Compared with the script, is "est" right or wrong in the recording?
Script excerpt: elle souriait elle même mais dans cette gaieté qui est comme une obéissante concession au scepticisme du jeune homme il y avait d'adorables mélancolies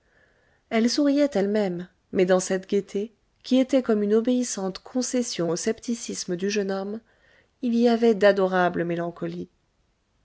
wrong